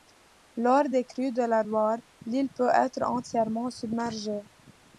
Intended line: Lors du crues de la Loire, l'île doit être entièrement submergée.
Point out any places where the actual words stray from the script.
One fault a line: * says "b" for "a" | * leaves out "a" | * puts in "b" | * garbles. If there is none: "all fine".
* says "des" for "du"
* says "peut" for "doit"